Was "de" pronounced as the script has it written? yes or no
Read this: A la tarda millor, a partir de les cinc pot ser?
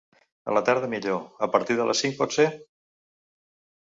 yes